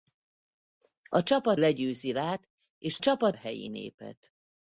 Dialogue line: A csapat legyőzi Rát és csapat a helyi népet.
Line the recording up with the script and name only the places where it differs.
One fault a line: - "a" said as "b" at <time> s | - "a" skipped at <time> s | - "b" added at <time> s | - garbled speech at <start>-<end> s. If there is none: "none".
none